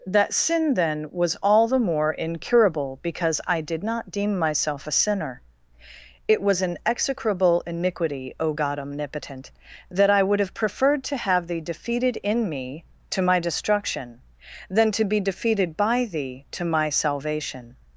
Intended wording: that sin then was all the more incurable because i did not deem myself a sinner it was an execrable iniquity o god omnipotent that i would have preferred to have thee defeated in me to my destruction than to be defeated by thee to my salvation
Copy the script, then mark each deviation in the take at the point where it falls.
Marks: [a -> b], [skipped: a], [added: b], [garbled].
that sin then was all the more incurable because i did not deem myself a sinner it was an execrable iniquity o god omnipotent that i would have preferred to have thee defeated in me to my destruction than to be defeated by thee to my salvation